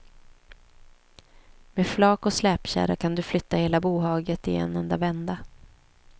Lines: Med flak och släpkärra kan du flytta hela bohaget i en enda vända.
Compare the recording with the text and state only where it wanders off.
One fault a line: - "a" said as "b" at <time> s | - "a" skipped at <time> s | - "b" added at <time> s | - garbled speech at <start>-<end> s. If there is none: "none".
none